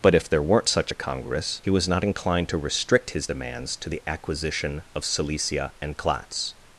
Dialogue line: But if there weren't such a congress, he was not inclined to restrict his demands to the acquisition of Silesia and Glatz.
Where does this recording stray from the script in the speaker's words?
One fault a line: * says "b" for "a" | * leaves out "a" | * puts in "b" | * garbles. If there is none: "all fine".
all fine